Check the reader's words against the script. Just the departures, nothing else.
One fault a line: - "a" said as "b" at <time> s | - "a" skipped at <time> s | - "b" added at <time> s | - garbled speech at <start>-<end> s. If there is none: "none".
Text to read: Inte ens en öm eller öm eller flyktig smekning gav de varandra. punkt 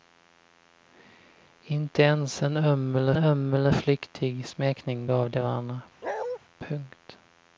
none